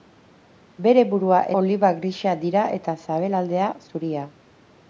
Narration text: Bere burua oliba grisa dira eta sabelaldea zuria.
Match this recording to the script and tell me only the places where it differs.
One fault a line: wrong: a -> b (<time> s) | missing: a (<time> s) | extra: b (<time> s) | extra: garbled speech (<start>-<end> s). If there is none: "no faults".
no faults